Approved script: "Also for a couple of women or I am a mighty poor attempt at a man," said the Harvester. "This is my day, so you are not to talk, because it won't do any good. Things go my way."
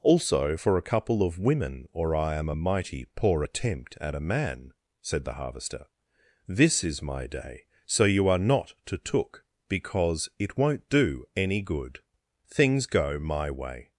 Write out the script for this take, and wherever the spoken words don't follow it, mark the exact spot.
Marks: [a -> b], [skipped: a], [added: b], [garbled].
"Also for a couple of women or I am a mighty poor attempt at a man," said the Harvester. "This is my day, so you are not to [talk, -> took] because it won't do any good. Things go my way."